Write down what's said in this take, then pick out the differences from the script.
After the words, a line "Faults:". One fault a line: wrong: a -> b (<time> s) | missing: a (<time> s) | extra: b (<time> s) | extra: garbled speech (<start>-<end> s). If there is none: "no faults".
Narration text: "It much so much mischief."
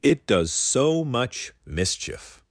"It does so much mischief."
Faults:
wrong: much -> does (0.2 s)